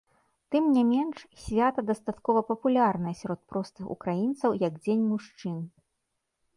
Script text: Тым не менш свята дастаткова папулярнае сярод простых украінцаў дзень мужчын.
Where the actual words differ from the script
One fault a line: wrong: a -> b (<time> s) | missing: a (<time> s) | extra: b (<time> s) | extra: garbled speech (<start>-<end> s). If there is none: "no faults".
extra: як (4.7 s)